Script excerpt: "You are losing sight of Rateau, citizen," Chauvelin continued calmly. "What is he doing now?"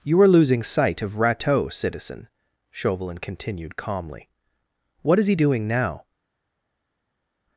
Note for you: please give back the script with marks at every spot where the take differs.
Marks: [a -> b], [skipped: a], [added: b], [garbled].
"You are losing sight of Rateau, citizen," Chauvelin continued calmly. "What is he doing now?"